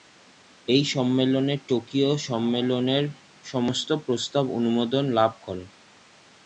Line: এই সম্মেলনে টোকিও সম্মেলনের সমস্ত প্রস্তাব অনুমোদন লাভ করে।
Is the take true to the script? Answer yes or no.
yes